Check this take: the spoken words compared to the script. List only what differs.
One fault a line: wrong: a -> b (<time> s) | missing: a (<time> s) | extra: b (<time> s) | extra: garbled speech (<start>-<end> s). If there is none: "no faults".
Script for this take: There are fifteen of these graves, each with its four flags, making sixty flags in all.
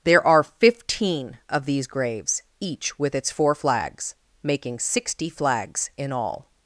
no faults